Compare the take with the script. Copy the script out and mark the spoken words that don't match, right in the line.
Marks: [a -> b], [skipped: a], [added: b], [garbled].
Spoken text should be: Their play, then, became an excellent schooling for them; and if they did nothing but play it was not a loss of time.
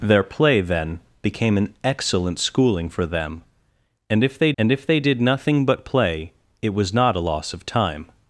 Their play, then, became an excellent schooling for them; and if they [added: and if they] did nothing but play it was not a loss of time.